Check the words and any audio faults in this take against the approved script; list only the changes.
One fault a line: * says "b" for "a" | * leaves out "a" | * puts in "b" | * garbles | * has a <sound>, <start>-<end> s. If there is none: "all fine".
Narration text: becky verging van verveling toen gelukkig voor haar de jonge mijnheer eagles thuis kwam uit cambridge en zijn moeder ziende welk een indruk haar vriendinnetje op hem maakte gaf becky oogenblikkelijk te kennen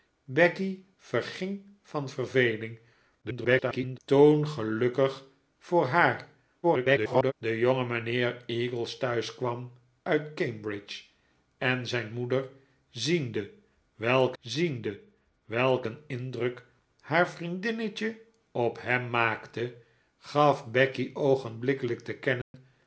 * garbles
* garbles
* puts in "ziende welk"
* has a dropout, 22.4-22.5 s